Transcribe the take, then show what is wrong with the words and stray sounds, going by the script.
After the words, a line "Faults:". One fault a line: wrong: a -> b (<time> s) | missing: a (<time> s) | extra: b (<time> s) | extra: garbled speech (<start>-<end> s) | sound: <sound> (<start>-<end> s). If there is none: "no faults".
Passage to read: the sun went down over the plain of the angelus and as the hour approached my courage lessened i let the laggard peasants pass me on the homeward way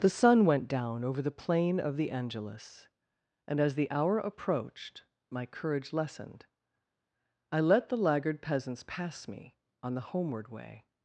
the sun went down over the plain of the angelus and as the hour approached my courage lessened i let the laggard peasants pass me on the homeward way
Faults:
no faults